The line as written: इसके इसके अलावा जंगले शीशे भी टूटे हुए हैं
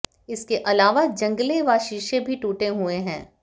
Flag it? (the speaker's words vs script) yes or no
yes